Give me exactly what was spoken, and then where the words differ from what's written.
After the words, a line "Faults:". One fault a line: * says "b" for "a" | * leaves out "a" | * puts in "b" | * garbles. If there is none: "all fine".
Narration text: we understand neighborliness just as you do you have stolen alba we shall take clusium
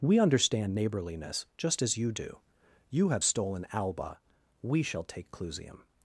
we understand neighborliness just as you do you have stolen alba we shall take clusium
Faults:
all fine